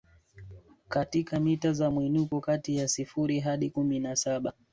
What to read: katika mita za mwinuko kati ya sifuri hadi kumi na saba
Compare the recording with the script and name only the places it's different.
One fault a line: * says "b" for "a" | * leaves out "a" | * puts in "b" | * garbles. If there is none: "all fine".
all fine